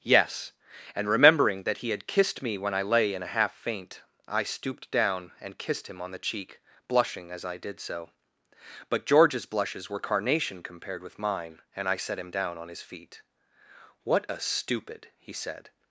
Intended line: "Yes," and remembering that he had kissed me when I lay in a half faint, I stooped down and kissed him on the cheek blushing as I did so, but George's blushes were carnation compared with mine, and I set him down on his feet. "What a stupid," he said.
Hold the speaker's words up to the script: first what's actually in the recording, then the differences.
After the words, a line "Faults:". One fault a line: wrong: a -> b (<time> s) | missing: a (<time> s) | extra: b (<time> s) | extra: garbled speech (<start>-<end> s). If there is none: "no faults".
"Yes," and remembering that he had kissed me when I lay in a half faint, I stooped down and kissed him on the cheek blushing as I did so, but George's blushes were carnation compared with mine, and I set him down on his feet. "What a stupid," he said.
Faults:
no faults